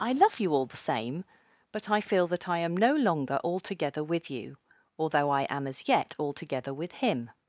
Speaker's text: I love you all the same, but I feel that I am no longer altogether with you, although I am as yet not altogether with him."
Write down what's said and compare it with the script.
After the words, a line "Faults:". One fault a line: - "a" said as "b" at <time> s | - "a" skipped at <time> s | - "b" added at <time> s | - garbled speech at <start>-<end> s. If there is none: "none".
I love you all the same, but I feel that I am no longer altogether with you, although I am as yet altogether with him."
Faults:
- "not" skipped at 6.2 s